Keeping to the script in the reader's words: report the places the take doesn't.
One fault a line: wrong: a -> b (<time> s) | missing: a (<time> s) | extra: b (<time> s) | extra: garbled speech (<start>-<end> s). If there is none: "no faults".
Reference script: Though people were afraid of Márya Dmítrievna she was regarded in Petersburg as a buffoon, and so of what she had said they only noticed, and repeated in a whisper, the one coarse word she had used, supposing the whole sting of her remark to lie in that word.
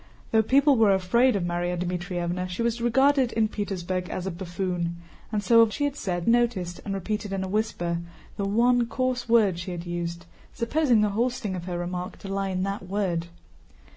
missing: what (5.7 s)
missing: they only (6.3 s)